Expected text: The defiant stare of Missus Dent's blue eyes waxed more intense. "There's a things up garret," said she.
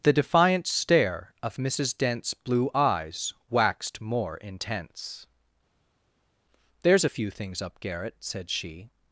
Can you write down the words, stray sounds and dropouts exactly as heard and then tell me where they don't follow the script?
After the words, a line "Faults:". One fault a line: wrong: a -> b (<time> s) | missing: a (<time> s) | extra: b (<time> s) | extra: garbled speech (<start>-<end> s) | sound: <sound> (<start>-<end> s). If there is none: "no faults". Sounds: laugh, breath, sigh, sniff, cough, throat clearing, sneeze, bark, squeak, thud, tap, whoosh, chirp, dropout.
The defiant stare of Missus Dent's blue eyes waxed more intense. "There's a few things up garret," said she.
Faults:
extra: few (7.1 s)